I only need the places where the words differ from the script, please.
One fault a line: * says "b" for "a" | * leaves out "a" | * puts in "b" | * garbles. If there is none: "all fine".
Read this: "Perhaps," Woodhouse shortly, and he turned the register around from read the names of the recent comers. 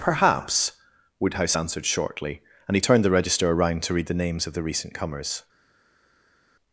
* puts in "answered"
* says "to" for "from"